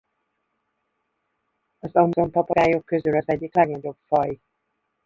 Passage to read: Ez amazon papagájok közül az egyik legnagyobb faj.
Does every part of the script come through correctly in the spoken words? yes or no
no